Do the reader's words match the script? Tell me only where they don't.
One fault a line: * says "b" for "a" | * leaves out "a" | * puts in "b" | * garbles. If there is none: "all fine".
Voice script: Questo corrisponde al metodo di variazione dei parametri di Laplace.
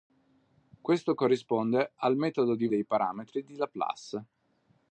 * leaves out "variazione"